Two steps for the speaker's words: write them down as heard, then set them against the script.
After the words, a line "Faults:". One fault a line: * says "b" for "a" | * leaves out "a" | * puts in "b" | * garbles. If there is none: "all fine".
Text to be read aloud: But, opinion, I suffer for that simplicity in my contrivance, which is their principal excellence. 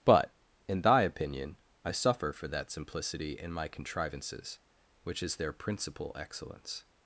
But, in thy opinion, I suffer for that simplicity in my contrivances, which is their principal excellence.
Faults:
* puts in "in thy"
* says "contrivances" for "contrivance"